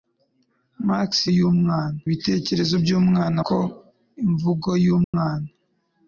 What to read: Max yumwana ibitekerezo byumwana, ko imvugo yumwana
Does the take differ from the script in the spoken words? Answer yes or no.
no